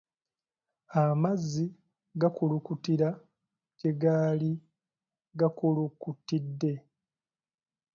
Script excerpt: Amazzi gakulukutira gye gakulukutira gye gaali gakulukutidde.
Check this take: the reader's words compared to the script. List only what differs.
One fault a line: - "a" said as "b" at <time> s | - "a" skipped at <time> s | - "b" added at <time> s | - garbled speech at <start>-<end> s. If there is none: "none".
- "gakulukutira gye" skipped at 3.9 s